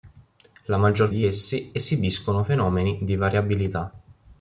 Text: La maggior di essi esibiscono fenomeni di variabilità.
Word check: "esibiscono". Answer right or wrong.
right